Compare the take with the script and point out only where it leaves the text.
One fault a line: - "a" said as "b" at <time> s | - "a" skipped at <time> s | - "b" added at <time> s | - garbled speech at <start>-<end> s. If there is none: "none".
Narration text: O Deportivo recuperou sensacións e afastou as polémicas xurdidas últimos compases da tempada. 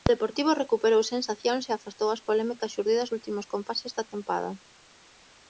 none